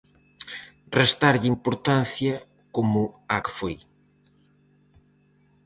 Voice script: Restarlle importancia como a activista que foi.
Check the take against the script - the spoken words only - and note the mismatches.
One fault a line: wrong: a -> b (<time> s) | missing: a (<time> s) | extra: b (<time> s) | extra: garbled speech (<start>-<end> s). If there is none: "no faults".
missing: activista (3.4 s)